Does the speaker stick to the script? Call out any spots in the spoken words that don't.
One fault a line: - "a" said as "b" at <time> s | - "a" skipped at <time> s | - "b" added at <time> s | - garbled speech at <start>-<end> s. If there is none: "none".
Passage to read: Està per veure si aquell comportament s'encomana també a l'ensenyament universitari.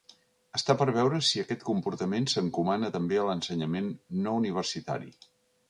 - "aquell" said as "aquest" at 1.4 s
- "no" added at 4.2 s